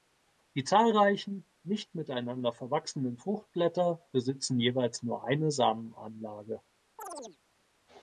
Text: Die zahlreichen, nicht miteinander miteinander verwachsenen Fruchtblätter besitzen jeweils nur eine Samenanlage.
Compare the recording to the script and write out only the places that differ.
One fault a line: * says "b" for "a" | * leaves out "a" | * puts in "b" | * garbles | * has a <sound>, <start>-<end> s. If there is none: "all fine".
* leaves out "miteinander"
* has a chirp, 7.0-7.4 s